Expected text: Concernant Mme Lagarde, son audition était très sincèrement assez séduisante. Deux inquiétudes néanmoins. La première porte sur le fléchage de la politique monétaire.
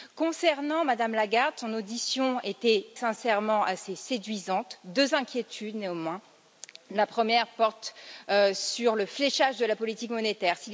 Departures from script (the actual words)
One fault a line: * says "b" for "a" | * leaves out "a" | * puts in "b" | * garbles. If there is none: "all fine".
* leaves out "très"